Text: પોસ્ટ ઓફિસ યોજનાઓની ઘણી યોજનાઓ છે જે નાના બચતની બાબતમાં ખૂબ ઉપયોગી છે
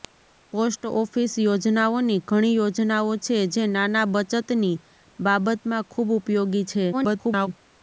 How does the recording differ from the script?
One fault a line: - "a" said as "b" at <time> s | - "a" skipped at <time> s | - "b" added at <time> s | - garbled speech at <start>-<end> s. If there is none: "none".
- garbled speech at 6.9-7.5 s